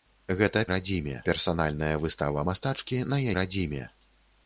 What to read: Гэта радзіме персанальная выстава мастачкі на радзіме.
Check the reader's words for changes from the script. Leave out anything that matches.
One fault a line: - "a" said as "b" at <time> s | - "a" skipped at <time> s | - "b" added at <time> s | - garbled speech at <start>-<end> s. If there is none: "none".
none